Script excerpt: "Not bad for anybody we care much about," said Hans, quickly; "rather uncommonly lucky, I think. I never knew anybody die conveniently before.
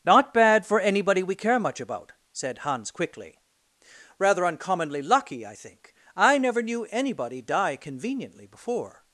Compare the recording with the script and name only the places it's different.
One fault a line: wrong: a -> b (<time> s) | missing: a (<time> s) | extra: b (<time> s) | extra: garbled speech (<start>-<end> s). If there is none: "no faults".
no faults